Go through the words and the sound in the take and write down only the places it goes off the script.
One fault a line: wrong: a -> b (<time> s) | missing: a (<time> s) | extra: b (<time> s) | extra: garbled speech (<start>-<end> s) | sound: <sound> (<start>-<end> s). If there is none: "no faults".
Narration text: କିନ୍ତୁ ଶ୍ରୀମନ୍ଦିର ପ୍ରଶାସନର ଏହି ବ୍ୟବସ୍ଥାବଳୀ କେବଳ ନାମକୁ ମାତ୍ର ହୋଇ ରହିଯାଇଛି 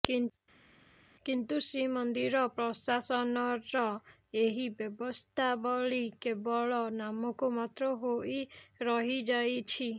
no faults